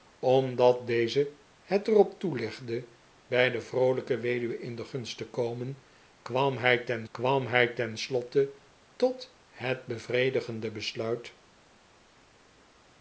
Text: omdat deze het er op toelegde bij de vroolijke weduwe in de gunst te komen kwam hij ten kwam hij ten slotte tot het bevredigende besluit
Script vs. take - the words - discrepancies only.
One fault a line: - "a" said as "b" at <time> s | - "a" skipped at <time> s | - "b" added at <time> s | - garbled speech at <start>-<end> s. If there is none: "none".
none